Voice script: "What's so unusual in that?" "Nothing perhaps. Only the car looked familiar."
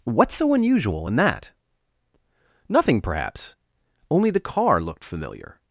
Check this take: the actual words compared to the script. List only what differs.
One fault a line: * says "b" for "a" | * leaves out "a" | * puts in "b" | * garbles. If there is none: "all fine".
all fine